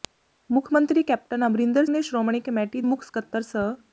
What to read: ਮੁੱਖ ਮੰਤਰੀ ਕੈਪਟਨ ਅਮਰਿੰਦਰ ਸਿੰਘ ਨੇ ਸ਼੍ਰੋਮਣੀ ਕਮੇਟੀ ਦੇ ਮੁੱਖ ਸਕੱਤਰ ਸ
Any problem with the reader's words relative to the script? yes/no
yes